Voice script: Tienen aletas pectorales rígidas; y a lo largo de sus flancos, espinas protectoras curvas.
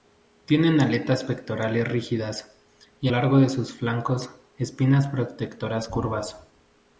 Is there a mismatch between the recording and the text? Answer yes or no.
yes